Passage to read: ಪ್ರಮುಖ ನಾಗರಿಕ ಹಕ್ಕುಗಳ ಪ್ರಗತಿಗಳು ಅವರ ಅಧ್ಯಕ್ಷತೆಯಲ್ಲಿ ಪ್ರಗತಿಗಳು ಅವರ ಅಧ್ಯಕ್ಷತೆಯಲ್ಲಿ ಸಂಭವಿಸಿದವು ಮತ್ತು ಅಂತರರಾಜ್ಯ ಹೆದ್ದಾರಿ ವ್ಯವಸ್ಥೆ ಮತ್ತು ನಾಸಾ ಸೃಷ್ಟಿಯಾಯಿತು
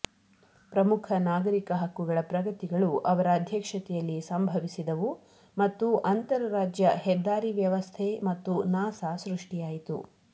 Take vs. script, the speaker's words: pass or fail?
fail